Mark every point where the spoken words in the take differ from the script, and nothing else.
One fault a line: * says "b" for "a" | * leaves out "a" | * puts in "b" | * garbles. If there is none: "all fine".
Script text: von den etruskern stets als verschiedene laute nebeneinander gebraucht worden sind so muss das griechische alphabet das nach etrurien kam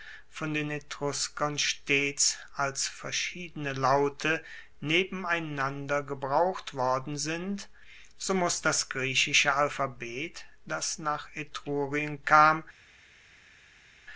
all fine